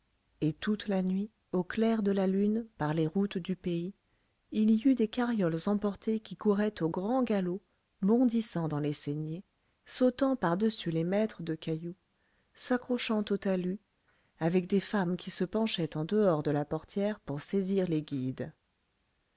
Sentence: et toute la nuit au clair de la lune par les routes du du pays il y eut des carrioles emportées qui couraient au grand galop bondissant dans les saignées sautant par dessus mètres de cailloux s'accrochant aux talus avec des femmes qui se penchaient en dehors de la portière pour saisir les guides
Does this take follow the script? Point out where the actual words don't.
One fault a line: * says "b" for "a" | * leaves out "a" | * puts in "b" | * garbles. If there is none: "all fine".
* leaves out "du"
* puts in "les"